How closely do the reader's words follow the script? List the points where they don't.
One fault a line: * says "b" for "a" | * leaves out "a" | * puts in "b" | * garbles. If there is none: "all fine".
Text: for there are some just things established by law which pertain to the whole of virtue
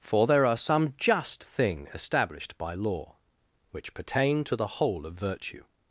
* says "thing" for "things"